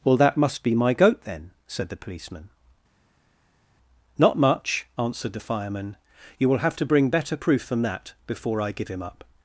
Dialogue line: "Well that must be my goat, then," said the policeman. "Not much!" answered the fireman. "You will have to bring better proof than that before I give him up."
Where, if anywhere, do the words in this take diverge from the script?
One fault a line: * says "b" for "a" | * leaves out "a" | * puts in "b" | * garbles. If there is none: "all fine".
all fine